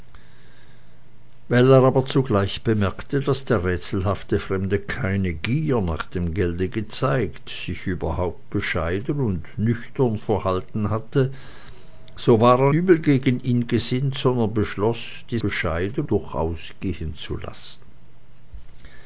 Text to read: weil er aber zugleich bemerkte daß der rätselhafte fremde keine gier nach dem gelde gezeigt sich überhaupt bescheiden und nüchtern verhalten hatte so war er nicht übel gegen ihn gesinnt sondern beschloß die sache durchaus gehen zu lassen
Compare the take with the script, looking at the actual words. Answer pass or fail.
fail